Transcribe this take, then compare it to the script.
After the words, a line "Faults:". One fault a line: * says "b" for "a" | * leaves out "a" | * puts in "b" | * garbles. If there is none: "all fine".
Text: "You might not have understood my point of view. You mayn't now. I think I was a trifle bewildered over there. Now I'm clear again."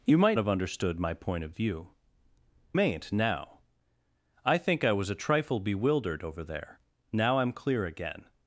"You might have understood my point of view. Mayn't now. I think I was a trifle bewildered over there. Now I'm clear again."
Faults:
* leaves out "not"
* leaves out "You"